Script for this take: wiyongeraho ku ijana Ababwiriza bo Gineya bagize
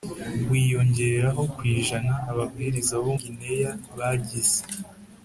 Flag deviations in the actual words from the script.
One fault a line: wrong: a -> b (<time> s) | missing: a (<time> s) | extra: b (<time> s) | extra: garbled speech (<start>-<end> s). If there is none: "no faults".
no faults